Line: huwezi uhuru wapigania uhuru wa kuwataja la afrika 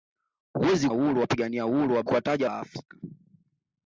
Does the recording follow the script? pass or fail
pass